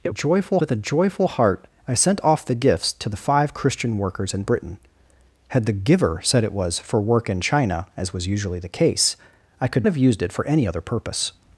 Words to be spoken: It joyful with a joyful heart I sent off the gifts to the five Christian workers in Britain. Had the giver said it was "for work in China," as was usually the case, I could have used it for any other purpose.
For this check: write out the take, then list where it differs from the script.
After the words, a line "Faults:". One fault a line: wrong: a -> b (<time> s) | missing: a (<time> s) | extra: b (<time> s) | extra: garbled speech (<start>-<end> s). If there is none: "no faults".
It joyful with a joyful heart I sent off the gifts to the five Christian workers in Britain. Had the giver said it was "for work in China," as was usually the case, I could have used it for any other purpose.
Faults:
no faults